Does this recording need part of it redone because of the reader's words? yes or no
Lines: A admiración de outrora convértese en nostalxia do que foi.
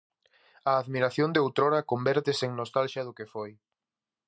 no